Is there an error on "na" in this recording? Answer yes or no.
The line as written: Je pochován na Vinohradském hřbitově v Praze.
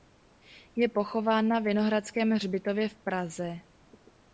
no